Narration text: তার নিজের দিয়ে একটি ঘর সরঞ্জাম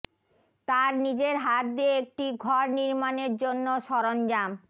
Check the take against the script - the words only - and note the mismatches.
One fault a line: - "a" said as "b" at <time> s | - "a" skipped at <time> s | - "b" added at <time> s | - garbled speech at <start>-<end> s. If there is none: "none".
- "হাত" added at 1.4 s
- "নির্মাণের জন্য" added at 2.8 s